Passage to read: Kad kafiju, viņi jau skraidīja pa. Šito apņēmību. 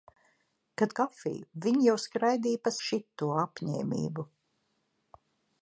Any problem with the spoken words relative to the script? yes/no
no